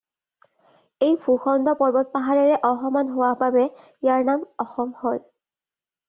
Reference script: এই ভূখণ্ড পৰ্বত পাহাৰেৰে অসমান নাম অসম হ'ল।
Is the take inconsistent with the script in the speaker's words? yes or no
yes